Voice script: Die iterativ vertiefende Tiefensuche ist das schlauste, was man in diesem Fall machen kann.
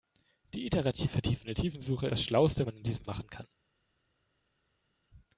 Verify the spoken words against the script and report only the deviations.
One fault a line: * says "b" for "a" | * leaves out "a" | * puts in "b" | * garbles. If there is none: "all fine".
* leaves out "ist"
* leaves out "was"
* leaves out "Fall"